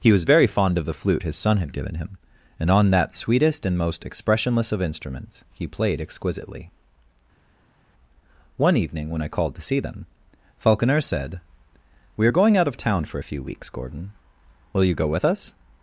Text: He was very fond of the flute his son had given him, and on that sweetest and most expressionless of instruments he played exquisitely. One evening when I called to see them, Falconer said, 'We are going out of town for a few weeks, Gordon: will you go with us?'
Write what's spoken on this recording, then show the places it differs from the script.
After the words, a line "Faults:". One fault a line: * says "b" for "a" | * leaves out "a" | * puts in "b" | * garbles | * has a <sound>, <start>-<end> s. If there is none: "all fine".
He was very fond of the flute his son had given him, and on that sweetest and most expressionless of instruments he played exquisitely. One evening when I called to see them, Falconer said, 'We are going out of town for a few weeks, Gordon: will you go with us?'
Faults:
all fine